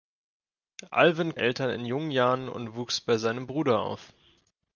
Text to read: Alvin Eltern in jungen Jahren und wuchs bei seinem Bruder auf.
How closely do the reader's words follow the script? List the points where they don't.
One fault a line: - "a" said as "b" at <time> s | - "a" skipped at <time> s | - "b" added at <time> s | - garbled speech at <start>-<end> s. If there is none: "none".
none